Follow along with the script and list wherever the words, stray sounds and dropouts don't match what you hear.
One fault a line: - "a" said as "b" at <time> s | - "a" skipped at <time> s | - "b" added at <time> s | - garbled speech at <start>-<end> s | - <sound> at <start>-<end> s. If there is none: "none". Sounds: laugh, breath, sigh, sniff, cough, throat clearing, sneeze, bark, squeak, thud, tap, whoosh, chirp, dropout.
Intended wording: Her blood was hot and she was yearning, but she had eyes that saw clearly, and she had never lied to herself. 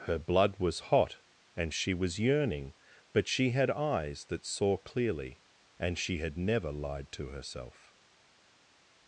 none